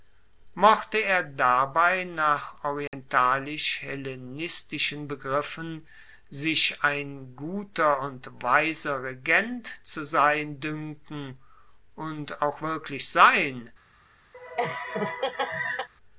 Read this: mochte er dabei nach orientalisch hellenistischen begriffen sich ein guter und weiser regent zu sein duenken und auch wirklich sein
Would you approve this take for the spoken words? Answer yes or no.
yes